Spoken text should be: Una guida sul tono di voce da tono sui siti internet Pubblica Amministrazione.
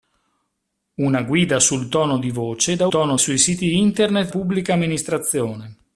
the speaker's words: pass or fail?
pass